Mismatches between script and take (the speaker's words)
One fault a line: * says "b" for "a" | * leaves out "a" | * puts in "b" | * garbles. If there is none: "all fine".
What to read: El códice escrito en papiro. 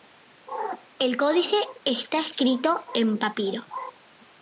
* puts in "está"